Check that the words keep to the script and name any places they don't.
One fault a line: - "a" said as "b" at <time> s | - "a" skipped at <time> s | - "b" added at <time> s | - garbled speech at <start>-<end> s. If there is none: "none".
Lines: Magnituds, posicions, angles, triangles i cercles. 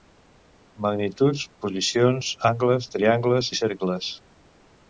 none